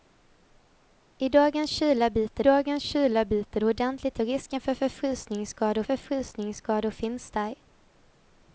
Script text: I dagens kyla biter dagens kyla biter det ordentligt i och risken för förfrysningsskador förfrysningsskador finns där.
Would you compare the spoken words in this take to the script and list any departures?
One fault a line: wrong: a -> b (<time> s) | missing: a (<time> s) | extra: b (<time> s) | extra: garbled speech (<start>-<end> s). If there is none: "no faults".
no faults